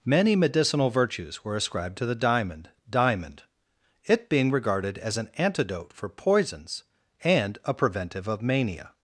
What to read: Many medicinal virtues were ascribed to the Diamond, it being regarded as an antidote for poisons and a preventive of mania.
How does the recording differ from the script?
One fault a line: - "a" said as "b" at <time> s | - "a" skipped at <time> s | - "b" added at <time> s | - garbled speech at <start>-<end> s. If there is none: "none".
- "Diamond" added at 2.9 s